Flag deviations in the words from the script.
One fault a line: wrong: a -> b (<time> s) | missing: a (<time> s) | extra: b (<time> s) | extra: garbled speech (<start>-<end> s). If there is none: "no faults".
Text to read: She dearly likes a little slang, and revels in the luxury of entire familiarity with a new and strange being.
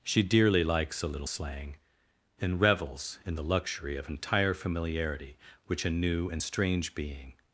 wrong: with -> which (5.7 s)